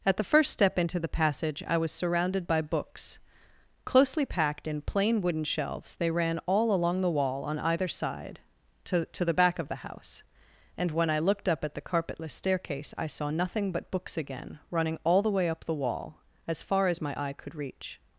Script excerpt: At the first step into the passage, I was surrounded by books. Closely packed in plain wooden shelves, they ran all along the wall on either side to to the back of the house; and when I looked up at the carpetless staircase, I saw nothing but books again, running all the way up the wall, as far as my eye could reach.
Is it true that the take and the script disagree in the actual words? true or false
false